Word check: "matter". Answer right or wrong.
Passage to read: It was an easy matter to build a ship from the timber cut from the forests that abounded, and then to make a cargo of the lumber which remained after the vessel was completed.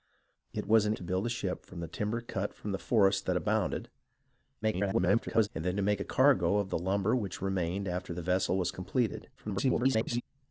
wrong